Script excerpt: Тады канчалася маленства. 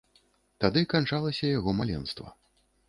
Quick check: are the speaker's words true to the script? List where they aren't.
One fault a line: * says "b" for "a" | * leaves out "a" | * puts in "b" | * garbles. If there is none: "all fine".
* puts in "яго"